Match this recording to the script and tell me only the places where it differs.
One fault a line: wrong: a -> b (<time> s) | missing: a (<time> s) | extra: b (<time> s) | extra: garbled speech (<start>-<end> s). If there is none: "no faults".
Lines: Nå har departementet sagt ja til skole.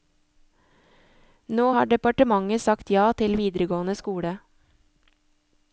extra: videregående (3.4 s)